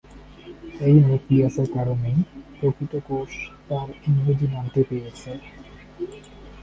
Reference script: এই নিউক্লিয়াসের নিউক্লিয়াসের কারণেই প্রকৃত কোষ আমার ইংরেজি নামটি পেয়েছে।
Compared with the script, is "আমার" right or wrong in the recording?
wrong